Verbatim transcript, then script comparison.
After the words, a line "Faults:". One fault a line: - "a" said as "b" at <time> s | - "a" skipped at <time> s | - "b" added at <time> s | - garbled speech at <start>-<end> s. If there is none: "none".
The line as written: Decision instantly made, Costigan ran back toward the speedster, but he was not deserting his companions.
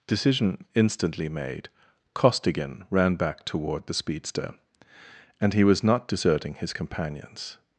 Decision instantly made, Costigan ran back toward the speedster, and he was not deserting his companions.
Faults:
- "but" said as "and" at 5.4 s